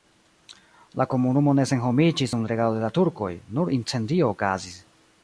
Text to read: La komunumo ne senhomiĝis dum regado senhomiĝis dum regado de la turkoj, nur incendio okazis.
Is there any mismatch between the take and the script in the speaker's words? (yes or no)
yes